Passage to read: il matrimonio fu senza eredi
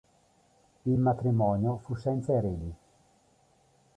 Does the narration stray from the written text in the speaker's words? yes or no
no